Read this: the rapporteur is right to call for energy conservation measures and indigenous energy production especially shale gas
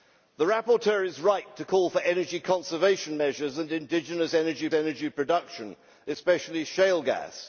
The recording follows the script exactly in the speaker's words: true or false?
false